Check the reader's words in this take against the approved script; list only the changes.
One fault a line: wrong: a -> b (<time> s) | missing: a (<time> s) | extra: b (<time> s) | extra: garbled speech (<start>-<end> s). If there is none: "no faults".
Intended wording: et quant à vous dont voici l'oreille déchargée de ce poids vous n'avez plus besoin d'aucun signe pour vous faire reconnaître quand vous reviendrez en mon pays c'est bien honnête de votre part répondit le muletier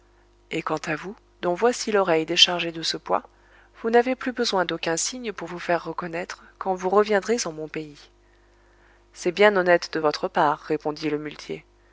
no faults